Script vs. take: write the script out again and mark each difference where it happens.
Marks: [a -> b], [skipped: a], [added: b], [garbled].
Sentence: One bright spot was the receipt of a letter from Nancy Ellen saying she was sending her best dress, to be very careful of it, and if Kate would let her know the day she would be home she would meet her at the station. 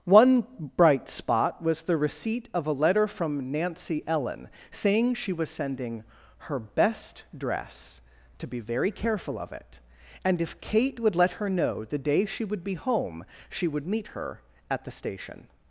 One bright spot was the receipt of a letter from Nancy Ellen saying she was sending her best dress, to be very careful of it, and if Kate would let her know the day she would be home she would meet her at the station.